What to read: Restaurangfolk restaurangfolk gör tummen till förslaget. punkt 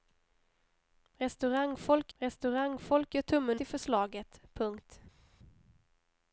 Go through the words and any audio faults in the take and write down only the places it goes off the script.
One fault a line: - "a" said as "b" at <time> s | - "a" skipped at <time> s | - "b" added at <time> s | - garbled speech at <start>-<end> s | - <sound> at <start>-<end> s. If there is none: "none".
none